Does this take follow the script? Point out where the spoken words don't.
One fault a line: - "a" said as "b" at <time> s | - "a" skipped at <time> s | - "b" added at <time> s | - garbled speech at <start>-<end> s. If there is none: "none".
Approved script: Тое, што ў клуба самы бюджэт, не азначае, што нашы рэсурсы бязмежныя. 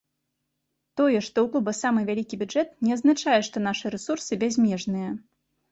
- "вялікі" added at 2.1 s